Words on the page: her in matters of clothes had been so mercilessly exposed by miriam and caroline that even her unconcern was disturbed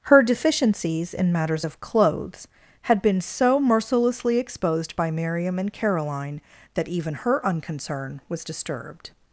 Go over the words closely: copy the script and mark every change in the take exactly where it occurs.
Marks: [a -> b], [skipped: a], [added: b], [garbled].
her [added: deficiencies] in matters of clothes had been so mercilessly exposed by miriam and caroline that even her unconcern was disturbed